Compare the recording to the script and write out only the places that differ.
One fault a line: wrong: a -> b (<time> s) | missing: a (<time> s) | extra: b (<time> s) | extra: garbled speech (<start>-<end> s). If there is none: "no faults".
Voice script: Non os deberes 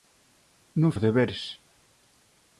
no faults